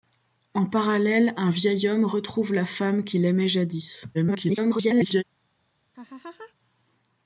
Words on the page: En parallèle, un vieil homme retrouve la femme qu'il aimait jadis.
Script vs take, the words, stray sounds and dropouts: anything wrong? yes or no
yes